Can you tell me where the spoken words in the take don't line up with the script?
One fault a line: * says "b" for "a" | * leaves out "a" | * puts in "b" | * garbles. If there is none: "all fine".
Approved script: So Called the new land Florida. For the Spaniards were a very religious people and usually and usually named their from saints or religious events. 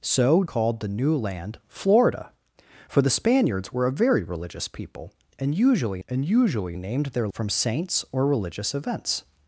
all fine